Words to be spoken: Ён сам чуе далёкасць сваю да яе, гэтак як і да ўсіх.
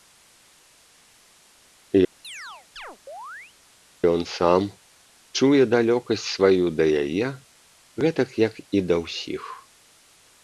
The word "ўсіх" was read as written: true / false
true